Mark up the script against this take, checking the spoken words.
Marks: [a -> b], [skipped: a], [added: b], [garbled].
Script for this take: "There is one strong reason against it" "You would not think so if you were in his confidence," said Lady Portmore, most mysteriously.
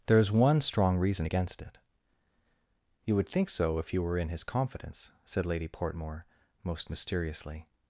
"There is one strong reason against it" "You would [skipped: not] think so if you were in his confidence," said Lady Portmore, most mysteriously.